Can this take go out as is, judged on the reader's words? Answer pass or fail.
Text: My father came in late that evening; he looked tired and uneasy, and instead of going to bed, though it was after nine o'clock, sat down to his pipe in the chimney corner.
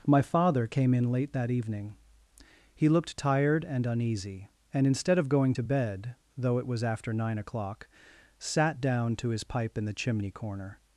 pass